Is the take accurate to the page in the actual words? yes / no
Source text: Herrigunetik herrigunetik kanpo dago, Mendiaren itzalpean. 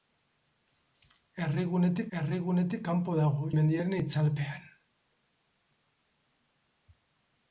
yes